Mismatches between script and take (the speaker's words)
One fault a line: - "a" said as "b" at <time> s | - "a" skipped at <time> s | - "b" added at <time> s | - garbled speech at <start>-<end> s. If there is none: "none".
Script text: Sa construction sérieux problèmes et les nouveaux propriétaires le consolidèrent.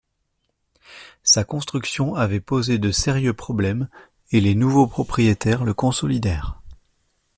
- "avait posé de" added at 2.1 s